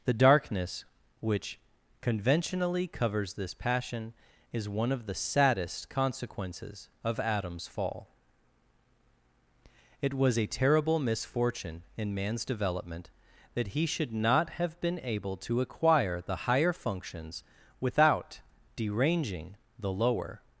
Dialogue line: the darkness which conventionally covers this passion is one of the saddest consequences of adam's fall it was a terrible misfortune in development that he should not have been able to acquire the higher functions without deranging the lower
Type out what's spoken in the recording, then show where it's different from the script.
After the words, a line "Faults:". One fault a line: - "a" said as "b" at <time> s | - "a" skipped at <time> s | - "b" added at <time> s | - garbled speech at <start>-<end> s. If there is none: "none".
the darkness which conventionally covers this passion is one of the saddest consequences of adam's fall it was a terrible misfortune in man's development that he should not have been able to acquire the higher functions without deranging the lower
Faults:
- "man's" added at 12.2 s